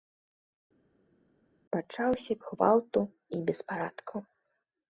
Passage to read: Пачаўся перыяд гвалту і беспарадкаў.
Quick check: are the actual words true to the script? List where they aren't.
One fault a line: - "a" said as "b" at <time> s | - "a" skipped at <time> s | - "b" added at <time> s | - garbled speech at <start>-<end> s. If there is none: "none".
- "перыяд" skipped at 2.3 s